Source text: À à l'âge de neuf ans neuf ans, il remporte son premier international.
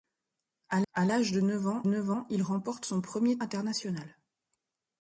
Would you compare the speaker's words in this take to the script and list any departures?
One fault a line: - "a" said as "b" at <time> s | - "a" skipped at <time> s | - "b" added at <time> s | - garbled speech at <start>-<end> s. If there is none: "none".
none